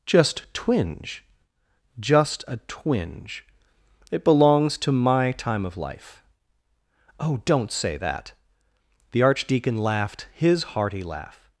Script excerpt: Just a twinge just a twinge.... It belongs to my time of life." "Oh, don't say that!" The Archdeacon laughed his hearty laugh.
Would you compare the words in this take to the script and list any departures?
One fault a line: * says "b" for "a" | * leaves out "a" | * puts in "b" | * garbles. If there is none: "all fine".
* leaves out "a"